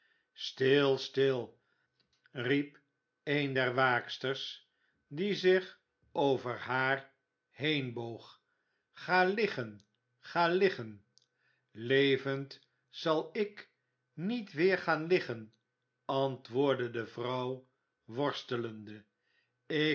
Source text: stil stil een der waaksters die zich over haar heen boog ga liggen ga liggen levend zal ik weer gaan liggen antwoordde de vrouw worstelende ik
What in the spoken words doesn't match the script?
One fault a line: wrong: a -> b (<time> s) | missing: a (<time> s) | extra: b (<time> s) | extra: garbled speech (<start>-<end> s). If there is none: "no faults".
extra: riep (2.3 s)
extra: niet (14.1 s)